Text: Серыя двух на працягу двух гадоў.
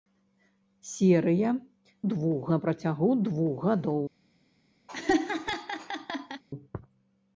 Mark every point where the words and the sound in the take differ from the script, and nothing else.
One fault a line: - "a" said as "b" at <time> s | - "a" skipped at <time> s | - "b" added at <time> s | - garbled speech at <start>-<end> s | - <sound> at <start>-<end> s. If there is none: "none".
- laugh at 4.9-6.4 s